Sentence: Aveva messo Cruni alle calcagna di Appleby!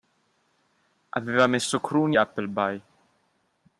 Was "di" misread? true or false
true